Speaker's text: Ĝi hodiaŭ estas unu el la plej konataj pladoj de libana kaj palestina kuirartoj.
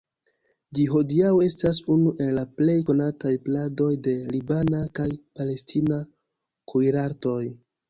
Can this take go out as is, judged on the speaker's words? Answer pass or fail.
pass